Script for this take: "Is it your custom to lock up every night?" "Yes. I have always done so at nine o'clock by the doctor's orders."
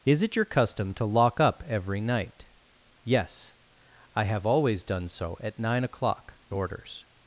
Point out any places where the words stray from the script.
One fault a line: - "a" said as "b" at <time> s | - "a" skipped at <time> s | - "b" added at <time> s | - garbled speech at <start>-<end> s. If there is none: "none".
- "by the doctor's" skipped at 6.3 s